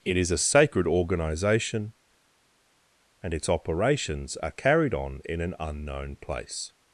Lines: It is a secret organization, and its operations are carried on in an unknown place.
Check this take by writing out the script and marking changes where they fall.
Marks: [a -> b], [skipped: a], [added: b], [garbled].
It is a [secret -> sacred] organization, and its operations are carried on in an unknown place.